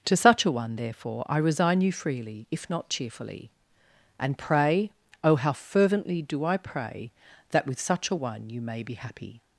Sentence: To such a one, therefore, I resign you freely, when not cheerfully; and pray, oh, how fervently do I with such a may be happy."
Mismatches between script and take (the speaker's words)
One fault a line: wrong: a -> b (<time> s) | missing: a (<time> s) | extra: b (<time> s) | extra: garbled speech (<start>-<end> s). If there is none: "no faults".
wrong: when -> if (2.5 s)
extra: pray that (6.6 s)
extra: one you (8.1 s)